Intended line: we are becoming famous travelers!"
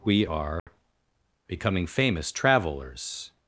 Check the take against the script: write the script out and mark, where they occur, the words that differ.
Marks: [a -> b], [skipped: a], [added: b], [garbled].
we are becoming famous travelers!"